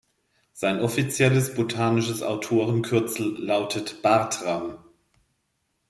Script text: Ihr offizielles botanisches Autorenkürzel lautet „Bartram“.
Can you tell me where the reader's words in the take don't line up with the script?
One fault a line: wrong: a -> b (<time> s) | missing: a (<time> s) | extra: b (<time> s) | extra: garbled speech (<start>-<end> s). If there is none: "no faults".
wrong: Ihr -> Sein (0.5 s)